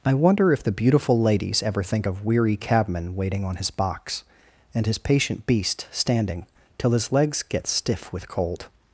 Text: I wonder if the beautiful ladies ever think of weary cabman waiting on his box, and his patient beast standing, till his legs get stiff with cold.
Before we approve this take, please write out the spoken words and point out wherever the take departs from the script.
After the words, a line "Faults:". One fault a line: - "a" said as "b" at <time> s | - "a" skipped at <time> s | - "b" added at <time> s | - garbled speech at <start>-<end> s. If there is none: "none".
I wonder if the beautiful ladies ever think of weary cabman waiting on his box, and his patient beast standing, till his legs get stiff with cold.
Faults:
none